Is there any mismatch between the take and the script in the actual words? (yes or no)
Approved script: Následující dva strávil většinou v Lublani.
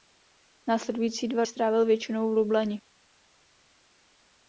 no